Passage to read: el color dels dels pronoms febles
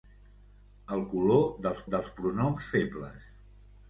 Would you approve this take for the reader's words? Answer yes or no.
yes